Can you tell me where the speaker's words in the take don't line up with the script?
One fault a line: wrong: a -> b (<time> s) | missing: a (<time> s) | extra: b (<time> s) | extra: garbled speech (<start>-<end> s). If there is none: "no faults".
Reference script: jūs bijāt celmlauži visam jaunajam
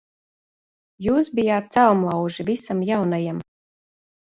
no faults